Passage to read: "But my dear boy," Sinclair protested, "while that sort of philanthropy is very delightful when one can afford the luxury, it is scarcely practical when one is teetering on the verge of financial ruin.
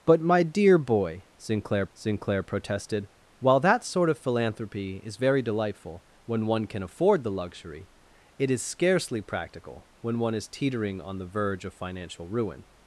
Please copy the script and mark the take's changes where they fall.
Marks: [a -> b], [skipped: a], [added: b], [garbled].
"But my dear boy," Sinclair [added: Sinclair] protested, "while that sort of philanthropy is very delightful when one can afford the luxury, it is scarcely practical when one is teetering on the verge of financial ruin.